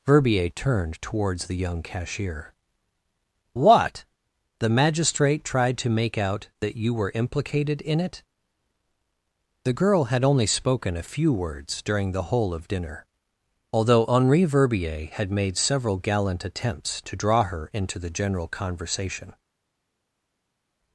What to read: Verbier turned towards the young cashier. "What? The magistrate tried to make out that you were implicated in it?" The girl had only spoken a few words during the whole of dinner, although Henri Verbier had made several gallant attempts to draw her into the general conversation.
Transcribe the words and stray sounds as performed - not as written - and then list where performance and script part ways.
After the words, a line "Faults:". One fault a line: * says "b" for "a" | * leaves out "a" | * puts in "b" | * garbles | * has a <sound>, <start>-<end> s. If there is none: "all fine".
Verbier turned towards the young cashier. "What? The magistrate tried to make out that you were implicated in it?" The girl had only spoken a few words during the whole of dinner, although Henri Verbier had made several gallant attempts to draw her into the general conversation.
Faults:
all fine